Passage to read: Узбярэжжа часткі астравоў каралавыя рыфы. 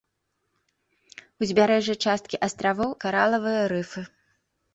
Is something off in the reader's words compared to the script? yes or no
no